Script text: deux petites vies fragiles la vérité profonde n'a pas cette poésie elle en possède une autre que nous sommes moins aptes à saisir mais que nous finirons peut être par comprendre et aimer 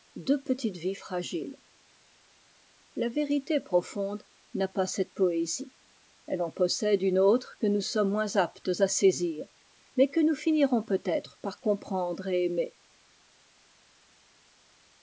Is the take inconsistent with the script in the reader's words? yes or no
no